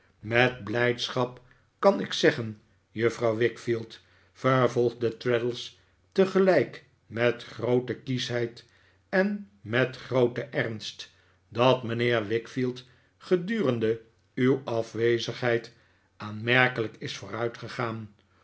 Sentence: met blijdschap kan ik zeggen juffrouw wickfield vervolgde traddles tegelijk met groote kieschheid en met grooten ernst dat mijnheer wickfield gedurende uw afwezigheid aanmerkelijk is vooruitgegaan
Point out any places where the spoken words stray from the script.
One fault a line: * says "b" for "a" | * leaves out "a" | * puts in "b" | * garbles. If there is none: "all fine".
all fine